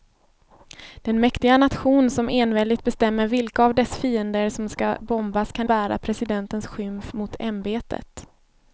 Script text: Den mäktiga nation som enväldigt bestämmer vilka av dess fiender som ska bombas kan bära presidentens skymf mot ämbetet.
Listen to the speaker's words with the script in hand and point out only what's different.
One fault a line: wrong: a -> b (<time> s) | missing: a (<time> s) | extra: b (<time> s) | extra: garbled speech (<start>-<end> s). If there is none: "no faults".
no faults